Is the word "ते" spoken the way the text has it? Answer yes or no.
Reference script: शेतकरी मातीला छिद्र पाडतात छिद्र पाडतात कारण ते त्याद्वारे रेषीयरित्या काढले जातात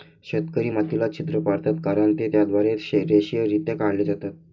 yes